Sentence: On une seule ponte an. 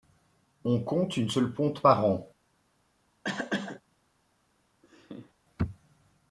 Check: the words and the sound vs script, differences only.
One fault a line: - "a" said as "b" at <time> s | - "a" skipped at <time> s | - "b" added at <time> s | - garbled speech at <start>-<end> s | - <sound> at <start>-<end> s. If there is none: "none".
- "compte" added at 0.8 s
- "par" added at 1.8 s
- cough at 3.2-3.8 s
- laugh at 4.8-5.3 s